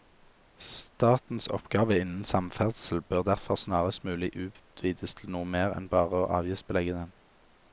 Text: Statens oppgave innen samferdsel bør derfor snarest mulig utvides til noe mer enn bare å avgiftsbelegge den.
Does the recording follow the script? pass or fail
pass